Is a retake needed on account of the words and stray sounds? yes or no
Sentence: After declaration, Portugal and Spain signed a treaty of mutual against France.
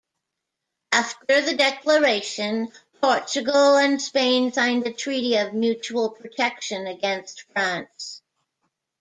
yes